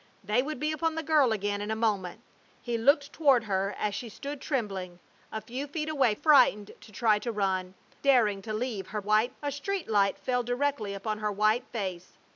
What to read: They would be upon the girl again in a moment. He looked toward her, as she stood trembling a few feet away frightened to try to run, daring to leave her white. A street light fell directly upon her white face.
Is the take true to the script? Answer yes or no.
yes